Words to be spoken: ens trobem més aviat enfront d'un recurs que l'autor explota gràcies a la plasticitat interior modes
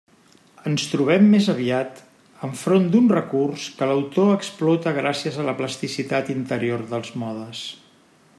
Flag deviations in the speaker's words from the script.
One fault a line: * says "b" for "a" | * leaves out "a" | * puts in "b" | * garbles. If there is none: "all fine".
* puts in "dels"